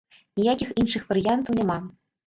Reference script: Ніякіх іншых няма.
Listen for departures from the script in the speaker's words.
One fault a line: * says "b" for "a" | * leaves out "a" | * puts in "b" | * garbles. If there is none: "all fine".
* puts in "варыянтаў"